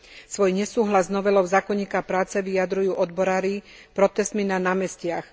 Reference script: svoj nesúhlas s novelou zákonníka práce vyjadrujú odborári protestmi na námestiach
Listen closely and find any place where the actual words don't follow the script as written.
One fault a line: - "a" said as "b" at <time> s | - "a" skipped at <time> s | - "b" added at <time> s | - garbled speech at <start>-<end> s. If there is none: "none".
none